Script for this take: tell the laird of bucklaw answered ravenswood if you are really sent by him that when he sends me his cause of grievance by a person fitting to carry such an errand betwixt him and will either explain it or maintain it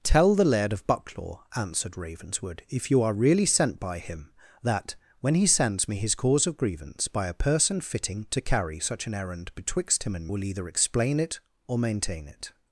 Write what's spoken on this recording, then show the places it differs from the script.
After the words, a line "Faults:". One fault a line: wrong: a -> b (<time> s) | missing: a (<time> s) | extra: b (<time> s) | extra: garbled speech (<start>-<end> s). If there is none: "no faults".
tell the laird of bucklaw answered ravenswood if you are really sent by him that when he sends me his cause of grievance by a person fitting to carry such an errand betwixt him and will either explain it or maintain it
Faults:
no faults